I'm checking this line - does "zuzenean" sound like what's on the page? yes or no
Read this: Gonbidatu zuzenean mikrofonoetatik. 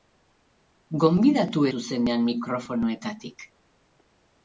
yes